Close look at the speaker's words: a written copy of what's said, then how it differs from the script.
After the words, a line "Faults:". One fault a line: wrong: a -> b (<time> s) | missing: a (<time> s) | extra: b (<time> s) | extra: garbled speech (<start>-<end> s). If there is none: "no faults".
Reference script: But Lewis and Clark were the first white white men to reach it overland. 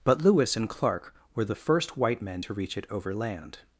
But Lewis and Clark were the first white men to reach it overland.
Faults:
missing: white (2.2 s)